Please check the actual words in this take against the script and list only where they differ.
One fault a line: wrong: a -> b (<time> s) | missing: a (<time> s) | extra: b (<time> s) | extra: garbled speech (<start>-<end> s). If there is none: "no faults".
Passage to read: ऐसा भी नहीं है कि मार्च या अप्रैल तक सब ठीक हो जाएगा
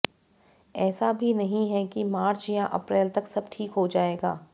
no faults